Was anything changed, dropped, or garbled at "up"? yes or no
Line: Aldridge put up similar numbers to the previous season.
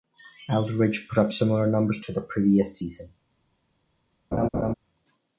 no